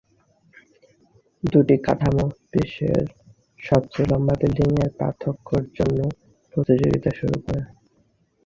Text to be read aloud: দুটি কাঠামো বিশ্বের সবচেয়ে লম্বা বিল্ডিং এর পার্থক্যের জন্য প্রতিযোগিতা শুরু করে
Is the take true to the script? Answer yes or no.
yes